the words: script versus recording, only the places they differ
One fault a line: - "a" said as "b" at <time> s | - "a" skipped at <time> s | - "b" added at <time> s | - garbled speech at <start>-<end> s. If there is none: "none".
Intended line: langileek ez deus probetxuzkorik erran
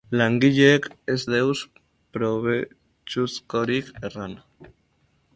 none